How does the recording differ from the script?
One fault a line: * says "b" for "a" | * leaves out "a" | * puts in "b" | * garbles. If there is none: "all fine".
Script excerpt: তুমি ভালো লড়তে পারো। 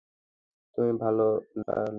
* leaves out "লড়তে"